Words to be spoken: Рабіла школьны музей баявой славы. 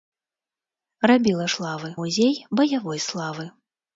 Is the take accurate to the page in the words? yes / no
no